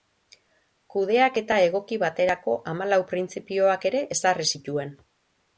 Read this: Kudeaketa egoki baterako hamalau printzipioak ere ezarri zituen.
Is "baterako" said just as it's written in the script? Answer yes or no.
yes